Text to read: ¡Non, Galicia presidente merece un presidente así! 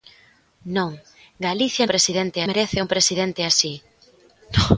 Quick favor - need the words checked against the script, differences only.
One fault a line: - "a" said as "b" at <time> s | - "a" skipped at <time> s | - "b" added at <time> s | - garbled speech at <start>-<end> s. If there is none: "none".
none